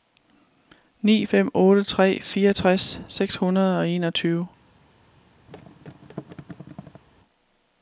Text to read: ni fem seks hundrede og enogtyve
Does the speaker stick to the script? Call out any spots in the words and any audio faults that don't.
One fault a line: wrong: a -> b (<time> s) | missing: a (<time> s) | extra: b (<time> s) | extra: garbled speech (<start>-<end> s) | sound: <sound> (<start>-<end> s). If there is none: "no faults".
extra: otte tre fireogtres (1.5 s)
sound: thud (5.5-7.0 s)